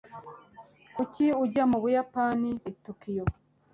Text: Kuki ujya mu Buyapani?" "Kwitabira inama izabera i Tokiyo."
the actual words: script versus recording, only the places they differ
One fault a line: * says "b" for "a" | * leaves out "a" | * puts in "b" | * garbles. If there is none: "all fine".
* leaves out "Kwitabira inama izabera"